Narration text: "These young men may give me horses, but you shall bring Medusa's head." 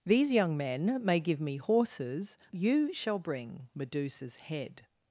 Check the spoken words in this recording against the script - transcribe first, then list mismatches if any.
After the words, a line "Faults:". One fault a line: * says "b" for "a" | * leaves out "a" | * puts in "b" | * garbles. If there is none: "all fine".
"These young men may give me horses, you shall bring Medusa's head."
Faults:
* leaves out "but"